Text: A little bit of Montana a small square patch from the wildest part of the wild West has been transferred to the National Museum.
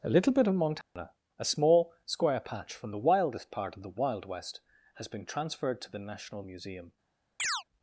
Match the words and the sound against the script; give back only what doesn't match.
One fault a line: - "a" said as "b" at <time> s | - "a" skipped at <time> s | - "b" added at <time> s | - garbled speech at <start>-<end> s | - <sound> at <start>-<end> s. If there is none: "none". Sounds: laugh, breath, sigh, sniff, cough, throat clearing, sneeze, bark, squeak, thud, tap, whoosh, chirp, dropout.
- dropout at 0.8-1.0 s
- chirp at 7.4-7.6 s